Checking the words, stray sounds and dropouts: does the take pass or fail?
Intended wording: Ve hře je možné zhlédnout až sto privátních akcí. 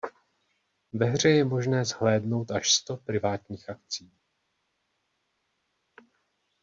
pass